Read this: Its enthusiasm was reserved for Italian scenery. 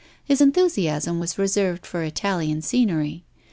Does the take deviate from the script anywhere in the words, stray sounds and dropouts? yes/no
yes